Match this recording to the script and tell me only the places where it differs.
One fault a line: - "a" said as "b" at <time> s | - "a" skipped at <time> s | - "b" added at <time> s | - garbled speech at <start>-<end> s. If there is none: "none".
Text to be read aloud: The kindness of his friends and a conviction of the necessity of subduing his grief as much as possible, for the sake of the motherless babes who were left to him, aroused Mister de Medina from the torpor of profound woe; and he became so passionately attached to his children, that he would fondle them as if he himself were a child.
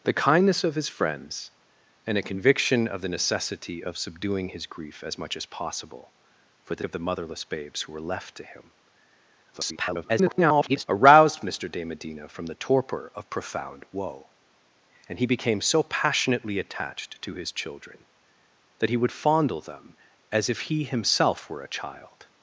- "sake" skipped at 6.8 s
- garbled speech at 9.5-10.9 s